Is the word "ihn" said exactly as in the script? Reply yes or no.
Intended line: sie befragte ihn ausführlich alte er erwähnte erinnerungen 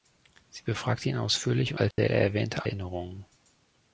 yes